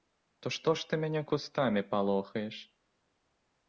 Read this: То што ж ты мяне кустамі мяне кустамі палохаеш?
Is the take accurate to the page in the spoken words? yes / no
no